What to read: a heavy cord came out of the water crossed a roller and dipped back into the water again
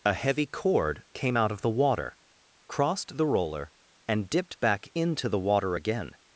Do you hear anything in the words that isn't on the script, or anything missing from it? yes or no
yes